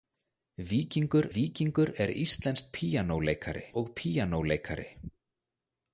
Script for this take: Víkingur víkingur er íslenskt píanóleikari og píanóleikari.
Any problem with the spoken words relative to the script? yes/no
no